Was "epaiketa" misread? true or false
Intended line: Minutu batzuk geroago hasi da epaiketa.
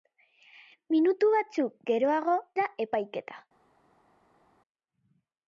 false